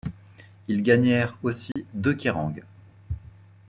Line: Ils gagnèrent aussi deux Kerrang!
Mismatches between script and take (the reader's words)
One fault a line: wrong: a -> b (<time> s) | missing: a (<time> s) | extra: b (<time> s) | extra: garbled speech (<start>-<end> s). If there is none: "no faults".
no faults